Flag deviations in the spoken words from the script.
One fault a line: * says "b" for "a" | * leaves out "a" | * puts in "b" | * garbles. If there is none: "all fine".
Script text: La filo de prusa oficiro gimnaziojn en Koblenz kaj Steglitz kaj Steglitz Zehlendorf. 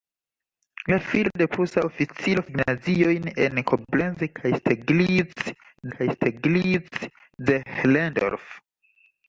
all fine